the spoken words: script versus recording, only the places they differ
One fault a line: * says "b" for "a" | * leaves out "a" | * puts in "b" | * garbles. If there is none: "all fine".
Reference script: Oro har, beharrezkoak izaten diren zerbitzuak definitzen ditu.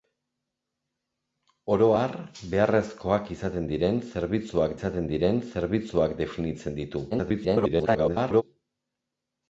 * puts in "izaten diren zerbitzuak"
* garbles